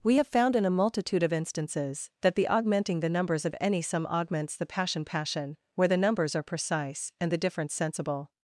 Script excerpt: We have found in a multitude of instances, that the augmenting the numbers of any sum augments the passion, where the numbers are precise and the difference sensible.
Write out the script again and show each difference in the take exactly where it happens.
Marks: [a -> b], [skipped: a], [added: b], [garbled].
We have found in a multitude of instances, that the augmenting the numbers of any sum augments the passion, [added: passion] where the numbers are precise and the difference sensible.